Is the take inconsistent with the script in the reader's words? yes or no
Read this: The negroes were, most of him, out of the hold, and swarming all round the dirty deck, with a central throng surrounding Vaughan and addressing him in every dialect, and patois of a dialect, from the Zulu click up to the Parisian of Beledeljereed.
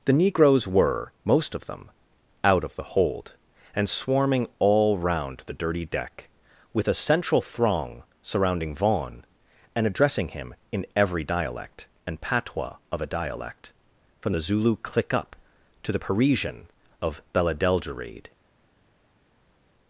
yes